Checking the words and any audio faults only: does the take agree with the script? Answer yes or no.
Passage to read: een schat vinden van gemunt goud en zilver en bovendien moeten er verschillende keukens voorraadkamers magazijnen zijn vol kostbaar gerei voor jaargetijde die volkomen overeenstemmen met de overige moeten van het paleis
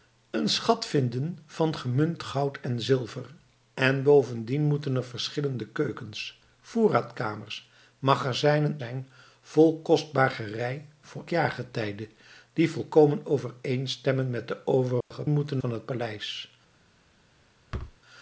no